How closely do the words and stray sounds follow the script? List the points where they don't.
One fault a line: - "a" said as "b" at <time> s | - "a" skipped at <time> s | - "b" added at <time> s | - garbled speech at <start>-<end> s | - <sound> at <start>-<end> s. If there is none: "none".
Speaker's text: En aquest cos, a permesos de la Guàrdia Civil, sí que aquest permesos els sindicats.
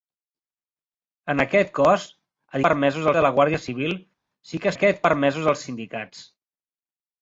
none